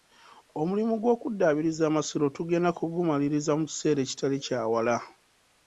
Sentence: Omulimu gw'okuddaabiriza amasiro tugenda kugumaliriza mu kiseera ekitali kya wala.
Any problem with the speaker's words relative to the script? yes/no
no